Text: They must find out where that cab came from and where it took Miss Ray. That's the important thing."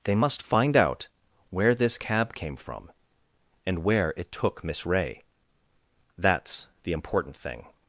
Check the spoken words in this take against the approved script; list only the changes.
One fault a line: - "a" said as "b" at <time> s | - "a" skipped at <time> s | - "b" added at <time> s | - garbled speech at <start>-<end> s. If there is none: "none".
- "that" said as "this" at 1.7 s